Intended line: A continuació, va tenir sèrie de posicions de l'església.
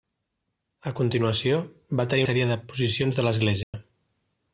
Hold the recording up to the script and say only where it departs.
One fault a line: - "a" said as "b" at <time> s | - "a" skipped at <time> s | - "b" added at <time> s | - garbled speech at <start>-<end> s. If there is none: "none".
none